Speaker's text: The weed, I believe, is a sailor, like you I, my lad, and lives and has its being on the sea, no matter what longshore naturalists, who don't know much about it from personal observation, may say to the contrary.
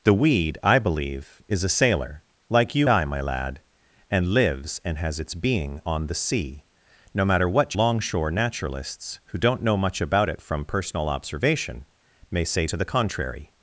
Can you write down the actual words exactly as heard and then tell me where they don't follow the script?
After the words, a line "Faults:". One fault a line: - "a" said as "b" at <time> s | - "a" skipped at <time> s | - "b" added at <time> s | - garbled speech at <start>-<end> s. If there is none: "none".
The weed, I believe, is a sailor, like you I, my lad, and lives and has its being on the sea, no matter what longshore naturalists, who don't know much about it from personal observation, may say to the contrary.
Faults:
none